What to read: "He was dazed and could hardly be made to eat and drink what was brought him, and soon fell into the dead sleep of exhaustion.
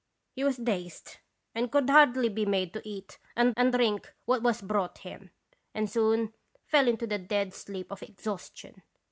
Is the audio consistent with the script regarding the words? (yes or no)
no